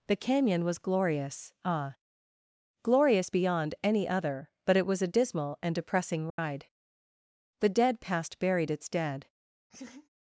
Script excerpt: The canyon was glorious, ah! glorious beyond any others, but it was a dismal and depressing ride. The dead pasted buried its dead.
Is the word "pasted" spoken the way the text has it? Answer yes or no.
no